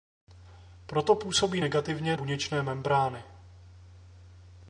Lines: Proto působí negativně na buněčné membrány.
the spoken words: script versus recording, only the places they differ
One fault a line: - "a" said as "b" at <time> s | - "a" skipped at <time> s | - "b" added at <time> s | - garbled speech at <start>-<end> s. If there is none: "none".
- "na" skipped at 2.2 s